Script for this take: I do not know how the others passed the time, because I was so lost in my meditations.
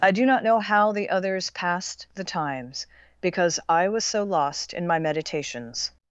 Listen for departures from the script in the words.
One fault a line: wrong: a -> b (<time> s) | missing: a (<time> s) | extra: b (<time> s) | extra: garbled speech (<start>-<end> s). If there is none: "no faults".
wrong: time -> times (2.2 s)